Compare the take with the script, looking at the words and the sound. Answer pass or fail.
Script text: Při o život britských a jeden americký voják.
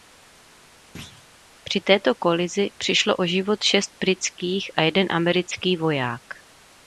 fail